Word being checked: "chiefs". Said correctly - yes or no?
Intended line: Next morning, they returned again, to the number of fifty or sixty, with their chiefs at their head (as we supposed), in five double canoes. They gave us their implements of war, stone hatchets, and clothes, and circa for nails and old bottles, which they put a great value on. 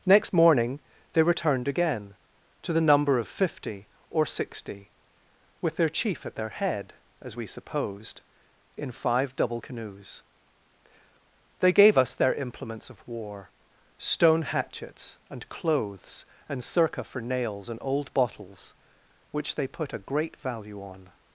no